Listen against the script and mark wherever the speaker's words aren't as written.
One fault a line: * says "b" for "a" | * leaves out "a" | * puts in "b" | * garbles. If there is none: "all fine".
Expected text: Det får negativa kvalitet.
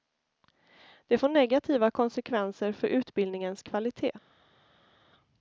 * puts in "konsekvenser för utbildningens"